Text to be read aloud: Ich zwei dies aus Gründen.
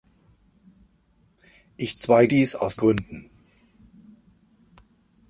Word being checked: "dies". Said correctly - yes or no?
yes